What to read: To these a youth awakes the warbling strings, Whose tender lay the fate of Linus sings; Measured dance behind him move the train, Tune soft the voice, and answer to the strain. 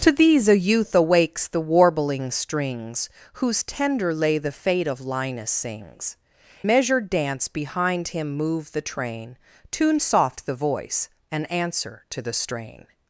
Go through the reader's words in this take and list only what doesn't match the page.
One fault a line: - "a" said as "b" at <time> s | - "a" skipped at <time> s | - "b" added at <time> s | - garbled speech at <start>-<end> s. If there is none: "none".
none